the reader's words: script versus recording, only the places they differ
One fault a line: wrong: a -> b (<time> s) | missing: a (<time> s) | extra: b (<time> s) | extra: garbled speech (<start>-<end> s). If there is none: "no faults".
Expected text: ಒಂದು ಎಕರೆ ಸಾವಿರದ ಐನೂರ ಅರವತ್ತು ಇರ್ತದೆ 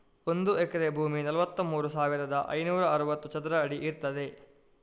extra: ಭೂಮಿ ನಲವತ್ತಮೂರು (0.9 s)
extra: ಚದರ ಅಡಿ (3.3 s)